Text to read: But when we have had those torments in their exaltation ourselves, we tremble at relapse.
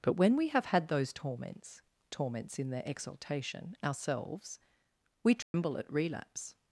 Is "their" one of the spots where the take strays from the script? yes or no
no